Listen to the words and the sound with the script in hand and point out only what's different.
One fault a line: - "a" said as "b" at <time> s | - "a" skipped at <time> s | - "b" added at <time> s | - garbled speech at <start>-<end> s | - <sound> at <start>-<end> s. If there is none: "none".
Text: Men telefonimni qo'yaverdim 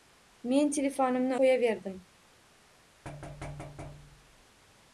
- thud at 3.0-4.4 s